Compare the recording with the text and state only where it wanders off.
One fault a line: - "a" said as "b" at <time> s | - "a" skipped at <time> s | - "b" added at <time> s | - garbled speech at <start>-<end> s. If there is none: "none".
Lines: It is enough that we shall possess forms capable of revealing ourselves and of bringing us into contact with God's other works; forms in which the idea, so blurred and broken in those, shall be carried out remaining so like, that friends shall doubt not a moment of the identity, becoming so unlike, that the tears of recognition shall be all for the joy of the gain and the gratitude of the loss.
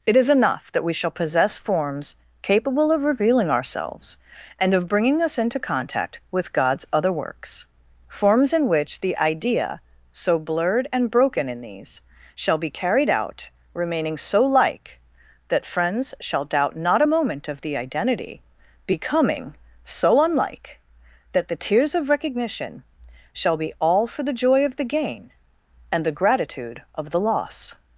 - "those" said as "these" at 11.6 s